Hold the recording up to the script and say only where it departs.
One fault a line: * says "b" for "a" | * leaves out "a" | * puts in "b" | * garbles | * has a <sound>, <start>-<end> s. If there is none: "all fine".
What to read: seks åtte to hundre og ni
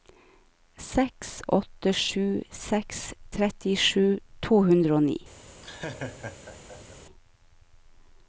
* puts in "sju seks trettisju"
* has a laugh, 5.6-7.0 s